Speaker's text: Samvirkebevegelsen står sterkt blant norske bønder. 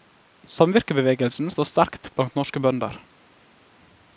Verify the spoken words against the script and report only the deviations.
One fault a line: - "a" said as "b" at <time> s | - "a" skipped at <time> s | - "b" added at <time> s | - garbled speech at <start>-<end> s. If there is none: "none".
none